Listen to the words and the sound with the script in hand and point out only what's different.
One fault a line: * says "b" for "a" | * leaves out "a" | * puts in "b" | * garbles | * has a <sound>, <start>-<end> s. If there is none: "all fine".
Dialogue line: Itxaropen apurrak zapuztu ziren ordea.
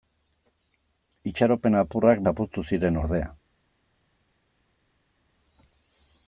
all fine